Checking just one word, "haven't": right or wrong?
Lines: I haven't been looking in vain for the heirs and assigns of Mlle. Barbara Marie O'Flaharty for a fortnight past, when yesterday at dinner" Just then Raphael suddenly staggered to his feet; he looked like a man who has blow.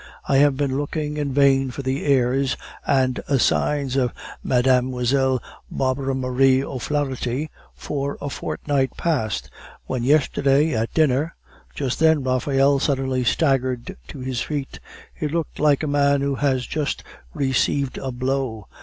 wrong